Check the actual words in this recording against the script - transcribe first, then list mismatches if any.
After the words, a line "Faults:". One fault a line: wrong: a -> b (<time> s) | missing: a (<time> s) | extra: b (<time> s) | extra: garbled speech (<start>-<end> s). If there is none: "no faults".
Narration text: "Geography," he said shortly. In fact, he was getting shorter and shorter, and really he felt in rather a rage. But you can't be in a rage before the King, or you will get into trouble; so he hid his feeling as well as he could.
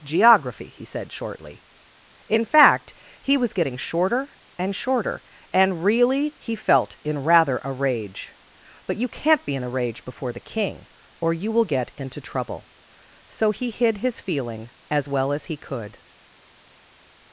"Geography," he said shortly. In fact, he was getting shorter and shorter, and really he felt in rather a rage. But you can't be in a rage before the King, or you will get into trouble; so he hid his feeling as well as he could.
Faults:
no faults